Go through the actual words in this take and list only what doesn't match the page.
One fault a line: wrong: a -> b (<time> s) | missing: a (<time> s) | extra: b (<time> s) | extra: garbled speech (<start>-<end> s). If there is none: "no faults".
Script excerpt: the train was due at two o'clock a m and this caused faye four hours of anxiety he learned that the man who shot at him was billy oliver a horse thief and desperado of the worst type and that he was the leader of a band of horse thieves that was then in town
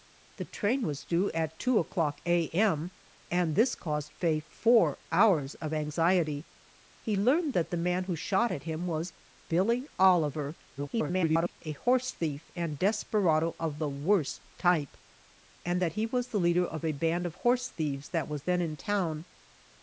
extra: garbled speech (10.8-11.6 s)